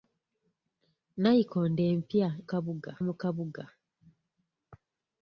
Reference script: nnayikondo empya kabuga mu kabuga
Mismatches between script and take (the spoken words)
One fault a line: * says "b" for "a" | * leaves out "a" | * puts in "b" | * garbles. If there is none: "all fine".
all fine